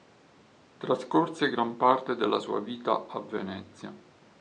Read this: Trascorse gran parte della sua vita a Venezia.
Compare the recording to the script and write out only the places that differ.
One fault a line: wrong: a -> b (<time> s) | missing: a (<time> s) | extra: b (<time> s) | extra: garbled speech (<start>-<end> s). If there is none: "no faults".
no faults